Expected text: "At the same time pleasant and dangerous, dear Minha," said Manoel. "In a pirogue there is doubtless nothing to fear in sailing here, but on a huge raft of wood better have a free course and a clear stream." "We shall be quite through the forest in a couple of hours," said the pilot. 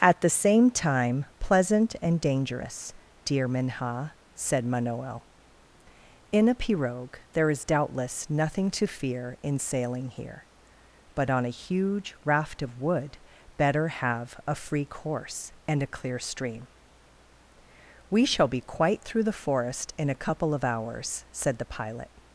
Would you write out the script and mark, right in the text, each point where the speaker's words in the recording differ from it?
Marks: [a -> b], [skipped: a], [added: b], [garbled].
"At the same time pleasant and dangerous, dear Minha," said Manoel. "In a pirogue there is doubtless nothing to fear in sailing here, but on a huge raft of wood better have a free course and a clear stream." "We shall be quite through the forest in a couple of hours," said the pilot.